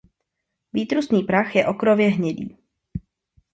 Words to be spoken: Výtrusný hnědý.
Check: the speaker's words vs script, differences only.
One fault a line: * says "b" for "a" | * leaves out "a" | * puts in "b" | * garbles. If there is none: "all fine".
* puts in "prach je okrově"